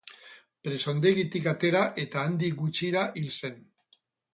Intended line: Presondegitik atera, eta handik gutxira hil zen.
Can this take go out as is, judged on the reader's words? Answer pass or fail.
pass